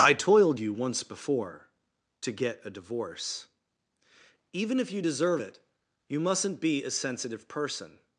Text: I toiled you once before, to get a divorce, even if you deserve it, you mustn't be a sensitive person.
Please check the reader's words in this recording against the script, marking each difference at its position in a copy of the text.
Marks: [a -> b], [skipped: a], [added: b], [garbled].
I toiled you once before, to get a divorce, even if you deserve it, you mustn't be a sensitive person.